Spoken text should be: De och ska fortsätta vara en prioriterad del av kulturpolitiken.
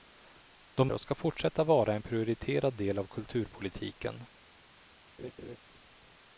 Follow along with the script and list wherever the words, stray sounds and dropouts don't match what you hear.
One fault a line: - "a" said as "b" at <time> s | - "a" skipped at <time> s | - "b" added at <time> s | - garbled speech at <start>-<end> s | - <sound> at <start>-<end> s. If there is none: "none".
- laugh at 5.2-5.6 s